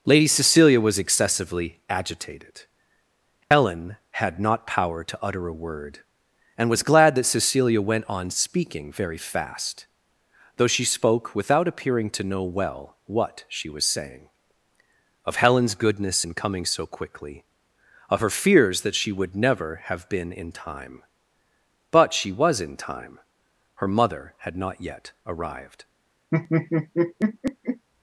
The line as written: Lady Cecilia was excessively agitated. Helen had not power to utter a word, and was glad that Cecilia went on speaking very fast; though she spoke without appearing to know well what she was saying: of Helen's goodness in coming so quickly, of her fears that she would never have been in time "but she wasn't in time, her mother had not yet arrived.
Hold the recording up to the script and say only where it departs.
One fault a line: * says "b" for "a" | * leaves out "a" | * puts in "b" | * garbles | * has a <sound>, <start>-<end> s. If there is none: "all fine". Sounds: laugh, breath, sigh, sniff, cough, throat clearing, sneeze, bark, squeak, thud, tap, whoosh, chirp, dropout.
* has a dropout, 3.4-3.5 s
* says "was" for "wasn't"
* has a laugh, 26.3-27.9 s